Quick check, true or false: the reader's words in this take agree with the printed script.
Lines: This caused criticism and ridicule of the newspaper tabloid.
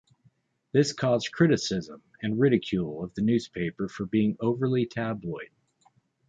false